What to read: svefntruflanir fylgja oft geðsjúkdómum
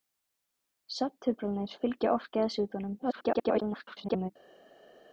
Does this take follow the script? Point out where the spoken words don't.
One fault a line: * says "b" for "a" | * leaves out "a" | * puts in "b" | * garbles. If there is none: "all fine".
* garbles